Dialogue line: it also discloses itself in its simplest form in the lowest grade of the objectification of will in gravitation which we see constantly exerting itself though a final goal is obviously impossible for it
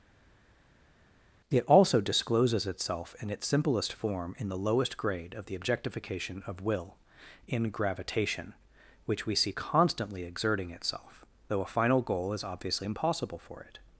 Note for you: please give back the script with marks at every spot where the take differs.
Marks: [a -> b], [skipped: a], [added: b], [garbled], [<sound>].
it also discloses itself in its simplest form in the lowest grade of the objectification of will in gravitation which we see constantly exerting itself though a final goal is obviously impossible for it